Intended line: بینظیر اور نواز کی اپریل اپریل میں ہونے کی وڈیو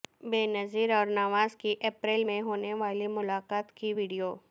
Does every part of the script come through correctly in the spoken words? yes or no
no